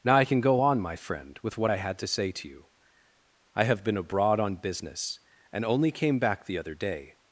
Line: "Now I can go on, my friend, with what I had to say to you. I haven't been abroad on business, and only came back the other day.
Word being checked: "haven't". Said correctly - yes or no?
no